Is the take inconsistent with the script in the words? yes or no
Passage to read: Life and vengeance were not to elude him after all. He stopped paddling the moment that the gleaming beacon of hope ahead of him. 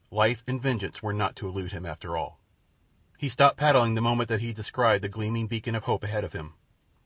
yes